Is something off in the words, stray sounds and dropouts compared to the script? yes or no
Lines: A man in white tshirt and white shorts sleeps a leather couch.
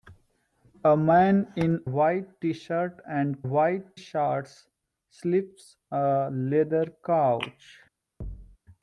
yes